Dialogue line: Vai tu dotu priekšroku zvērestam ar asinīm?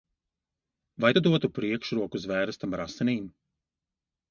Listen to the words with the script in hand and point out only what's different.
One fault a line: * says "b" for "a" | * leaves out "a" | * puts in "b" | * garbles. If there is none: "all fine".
all fine